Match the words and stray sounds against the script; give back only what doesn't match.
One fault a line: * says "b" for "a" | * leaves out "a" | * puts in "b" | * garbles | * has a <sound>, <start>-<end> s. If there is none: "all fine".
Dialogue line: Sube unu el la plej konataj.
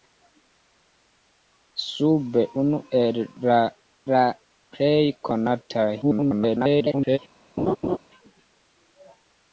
* puts in "la"
* garbles
* has a laugh, 7.6-8.0 s